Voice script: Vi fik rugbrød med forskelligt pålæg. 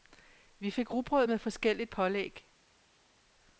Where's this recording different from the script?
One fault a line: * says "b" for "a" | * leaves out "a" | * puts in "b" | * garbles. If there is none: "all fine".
all fine